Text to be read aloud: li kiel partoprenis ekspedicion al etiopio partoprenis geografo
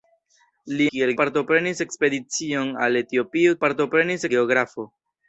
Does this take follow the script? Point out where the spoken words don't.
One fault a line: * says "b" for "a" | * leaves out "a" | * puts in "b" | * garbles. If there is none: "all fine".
all fine